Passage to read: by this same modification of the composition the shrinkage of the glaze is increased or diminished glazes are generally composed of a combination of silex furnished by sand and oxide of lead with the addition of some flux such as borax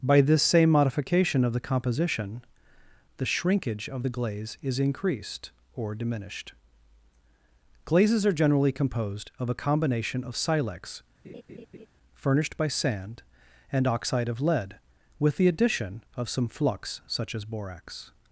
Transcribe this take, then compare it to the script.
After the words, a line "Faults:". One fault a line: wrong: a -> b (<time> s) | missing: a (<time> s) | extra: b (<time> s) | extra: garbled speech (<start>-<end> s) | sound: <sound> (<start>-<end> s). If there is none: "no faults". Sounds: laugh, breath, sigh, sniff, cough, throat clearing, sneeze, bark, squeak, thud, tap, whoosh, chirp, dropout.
by this same modification of the composition the shrinkage of the glaze is increased or diminished glazes are generally composed of a combination of silex furnished by sand and oxide of lead with the addition of some flux such as borax
Faults:
sound: laugh (11.2-11.9 s)